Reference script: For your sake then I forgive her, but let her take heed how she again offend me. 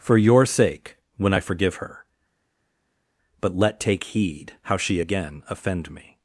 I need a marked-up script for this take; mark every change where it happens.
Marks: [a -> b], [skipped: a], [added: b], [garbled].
For your sake [then -> when] I forgive her, but let [skipped: her] take heed how she again offend me.